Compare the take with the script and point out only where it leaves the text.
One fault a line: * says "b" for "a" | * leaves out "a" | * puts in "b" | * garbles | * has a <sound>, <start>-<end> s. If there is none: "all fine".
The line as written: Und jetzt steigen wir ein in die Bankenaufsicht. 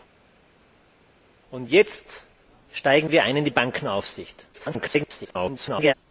* garbles